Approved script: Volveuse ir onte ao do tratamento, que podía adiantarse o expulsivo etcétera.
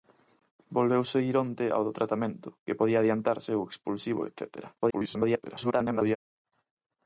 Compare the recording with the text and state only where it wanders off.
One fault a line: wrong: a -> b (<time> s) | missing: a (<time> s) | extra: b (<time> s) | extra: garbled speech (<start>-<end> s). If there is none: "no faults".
extra: garbled speech (4.8-6.2 s)